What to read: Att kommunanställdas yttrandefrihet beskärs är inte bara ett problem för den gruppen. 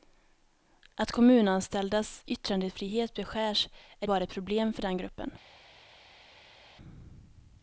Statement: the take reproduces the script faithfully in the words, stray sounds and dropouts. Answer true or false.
false